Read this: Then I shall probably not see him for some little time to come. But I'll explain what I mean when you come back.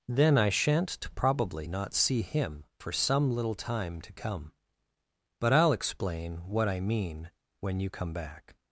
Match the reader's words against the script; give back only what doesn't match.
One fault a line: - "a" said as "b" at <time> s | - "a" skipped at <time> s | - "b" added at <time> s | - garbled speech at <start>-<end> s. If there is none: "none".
- "shall" said as "shan't" at 0.5 s